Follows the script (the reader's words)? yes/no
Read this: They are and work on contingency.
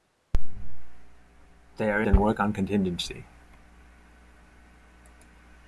yes